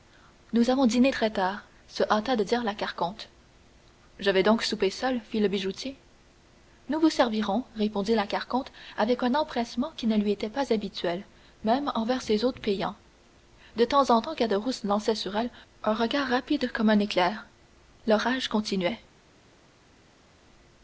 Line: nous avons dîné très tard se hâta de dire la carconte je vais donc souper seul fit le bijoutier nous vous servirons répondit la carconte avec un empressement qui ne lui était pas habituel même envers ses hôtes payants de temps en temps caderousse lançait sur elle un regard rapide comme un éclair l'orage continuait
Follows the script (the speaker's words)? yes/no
yes